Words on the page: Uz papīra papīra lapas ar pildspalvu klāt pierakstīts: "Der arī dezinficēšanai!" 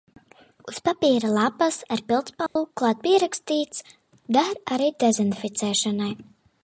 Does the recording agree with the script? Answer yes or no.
no